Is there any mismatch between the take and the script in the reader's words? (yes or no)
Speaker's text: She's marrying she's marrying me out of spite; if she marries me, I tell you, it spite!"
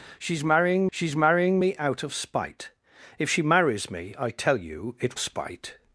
no